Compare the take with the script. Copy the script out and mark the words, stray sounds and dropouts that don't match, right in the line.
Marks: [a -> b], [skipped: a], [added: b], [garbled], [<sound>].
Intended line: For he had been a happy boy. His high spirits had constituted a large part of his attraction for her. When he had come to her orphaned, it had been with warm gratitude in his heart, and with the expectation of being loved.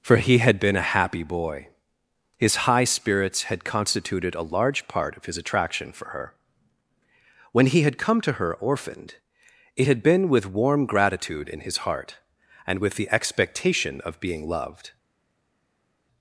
For he had been a happy boy. His high spirits had constituted a large part of his attraction for her. When he had come to her orphaned, it had been with warm gratitude in his heart, and with the expectation of being loved.